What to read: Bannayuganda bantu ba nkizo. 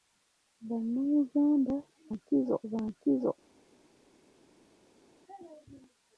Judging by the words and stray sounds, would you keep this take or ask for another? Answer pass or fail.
fail